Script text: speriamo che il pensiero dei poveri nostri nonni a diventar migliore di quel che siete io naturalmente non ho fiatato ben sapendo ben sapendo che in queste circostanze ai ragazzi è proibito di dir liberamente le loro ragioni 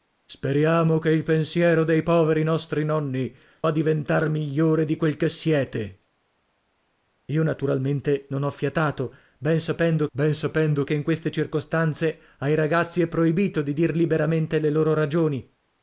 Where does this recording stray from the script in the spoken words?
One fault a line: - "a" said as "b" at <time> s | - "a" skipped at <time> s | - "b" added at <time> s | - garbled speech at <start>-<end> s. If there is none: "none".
none